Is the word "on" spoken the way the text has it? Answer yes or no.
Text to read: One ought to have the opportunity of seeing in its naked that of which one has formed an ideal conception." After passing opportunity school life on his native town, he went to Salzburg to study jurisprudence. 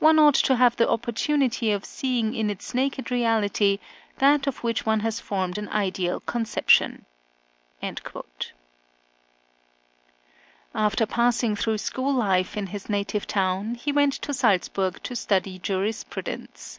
no